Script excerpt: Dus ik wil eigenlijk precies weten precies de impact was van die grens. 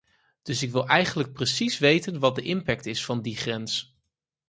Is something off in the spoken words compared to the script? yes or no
yes